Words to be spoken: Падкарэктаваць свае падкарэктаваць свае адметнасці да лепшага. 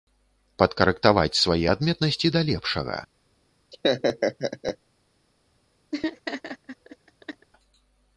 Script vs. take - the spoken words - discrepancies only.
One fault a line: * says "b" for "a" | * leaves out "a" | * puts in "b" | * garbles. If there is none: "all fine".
* leaves out "падкарэктаваць свае"